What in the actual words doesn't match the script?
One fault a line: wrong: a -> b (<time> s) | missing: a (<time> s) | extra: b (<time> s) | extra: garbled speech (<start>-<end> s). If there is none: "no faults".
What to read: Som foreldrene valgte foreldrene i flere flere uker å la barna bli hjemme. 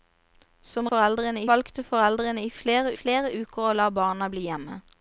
no faults